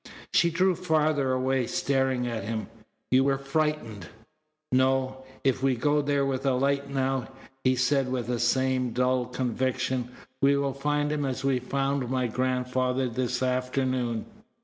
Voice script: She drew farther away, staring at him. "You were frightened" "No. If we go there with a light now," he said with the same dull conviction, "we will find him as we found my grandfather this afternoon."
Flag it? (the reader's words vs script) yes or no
no